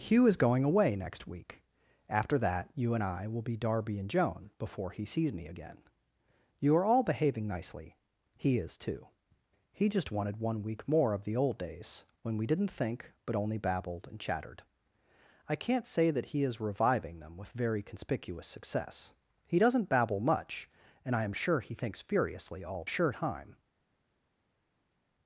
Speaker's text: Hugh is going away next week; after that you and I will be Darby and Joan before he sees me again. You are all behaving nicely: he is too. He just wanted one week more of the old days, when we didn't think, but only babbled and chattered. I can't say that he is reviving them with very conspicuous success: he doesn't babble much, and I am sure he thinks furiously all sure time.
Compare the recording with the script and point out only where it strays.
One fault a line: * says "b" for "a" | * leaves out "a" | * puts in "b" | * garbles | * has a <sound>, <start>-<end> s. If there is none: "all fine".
all fine